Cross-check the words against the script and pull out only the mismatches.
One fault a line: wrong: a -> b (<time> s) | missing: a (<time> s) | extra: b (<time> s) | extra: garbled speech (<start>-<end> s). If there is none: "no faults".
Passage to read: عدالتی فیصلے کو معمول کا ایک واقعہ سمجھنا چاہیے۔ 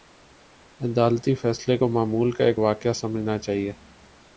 no faults